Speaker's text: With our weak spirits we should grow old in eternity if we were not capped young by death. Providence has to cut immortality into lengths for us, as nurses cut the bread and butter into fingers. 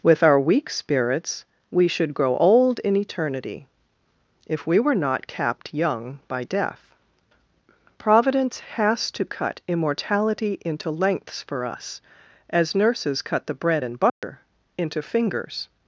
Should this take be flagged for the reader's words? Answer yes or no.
no